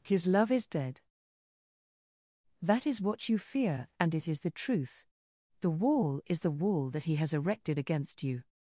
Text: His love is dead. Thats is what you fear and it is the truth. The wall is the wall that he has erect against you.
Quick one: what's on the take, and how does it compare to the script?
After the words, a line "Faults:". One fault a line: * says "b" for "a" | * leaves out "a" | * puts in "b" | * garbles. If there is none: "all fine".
His love is dead. That is what you fear and it is the truth. The wall is the wall that he has erected against you.
Faults:
* says "That" for "Thats"
* says "erected" for "erect"